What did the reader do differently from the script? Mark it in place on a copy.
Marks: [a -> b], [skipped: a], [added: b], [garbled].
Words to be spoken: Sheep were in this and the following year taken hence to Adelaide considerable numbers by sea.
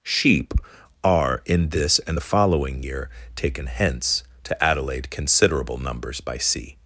Sheep [were -> are] in this and the following year taken hence to Adelaide considerable numbers by sea.